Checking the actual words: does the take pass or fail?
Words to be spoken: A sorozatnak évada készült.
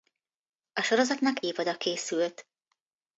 pass